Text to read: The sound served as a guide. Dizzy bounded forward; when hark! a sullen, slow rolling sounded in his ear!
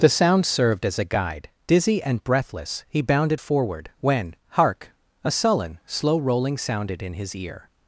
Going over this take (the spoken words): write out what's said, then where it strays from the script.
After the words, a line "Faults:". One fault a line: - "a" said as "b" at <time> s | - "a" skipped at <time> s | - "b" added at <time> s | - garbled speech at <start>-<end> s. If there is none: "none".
The sound served as a guide. Dizzy and breathless, he bounded forward; when hark! a sullen, slow rolling sounded in his ear!
Faults:
- "and breathless he" added at 2.0 s